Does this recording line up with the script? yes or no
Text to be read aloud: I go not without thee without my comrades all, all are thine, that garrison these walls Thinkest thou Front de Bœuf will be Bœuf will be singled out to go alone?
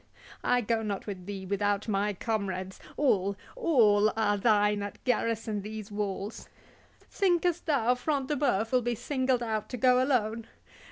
no